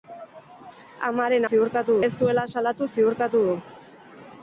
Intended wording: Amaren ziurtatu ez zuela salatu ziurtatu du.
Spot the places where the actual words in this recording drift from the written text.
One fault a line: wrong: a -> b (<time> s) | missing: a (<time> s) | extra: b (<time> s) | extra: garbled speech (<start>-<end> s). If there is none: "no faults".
no faults